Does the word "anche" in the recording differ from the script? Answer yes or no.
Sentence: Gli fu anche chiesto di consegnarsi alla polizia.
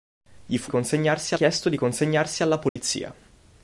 yes